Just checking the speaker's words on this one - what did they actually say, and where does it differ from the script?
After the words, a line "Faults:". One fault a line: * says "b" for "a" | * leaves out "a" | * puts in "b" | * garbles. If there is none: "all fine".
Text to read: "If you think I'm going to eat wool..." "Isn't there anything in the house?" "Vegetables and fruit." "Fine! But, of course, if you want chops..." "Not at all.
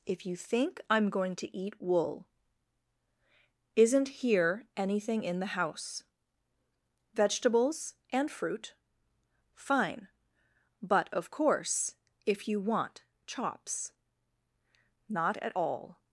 "If you think I'm going to eat wool..." "Isn't here anything in the house?" "Vegetables and fruit." "Fine! But, of course, if you want chops..." "Not at all.
Faults:
* says "here" for "there"